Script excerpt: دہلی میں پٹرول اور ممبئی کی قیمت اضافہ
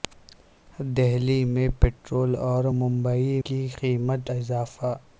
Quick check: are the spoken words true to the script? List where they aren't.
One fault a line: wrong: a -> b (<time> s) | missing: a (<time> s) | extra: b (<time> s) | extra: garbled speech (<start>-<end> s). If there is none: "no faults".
no faults